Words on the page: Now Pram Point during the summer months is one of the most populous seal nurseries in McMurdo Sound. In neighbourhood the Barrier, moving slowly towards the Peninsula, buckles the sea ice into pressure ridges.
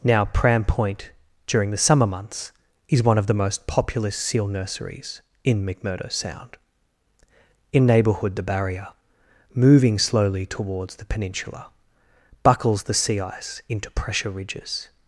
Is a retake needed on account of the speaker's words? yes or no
no